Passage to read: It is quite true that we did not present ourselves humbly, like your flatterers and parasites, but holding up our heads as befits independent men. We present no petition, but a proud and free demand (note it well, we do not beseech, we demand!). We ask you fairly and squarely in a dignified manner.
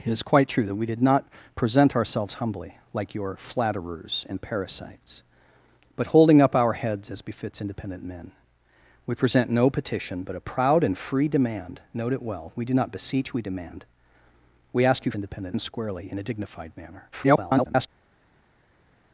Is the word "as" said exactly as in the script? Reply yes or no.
yes